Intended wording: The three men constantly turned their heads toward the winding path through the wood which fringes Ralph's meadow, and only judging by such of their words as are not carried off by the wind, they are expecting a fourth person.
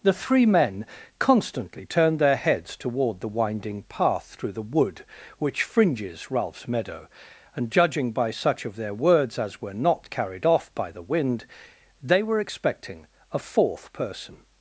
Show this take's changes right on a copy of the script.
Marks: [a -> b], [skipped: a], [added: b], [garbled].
The three men constantly turned their heads toward the winding path through the wood which fringes Ralph's meadow, and [skipped: only] judging by such of their words as [are -> were] not carried off by the wind, they [are -> were] expecting a fourth person.